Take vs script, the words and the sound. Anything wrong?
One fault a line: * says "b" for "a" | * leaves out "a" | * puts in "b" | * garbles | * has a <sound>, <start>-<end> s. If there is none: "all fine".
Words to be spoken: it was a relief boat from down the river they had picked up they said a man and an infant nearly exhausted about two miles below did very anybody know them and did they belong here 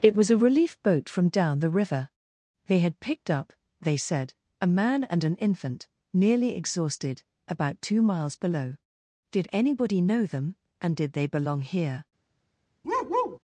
* leaves out "very"
* has a bark, 12.8-13.4 s